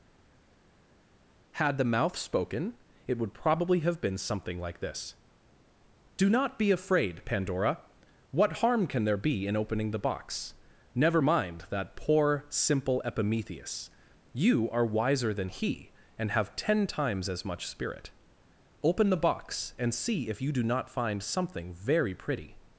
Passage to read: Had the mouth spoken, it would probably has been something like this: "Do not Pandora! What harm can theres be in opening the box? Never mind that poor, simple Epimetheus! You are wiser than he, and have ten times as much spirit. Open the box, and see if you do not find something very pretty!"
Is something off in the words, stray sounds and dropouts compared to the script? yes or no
yes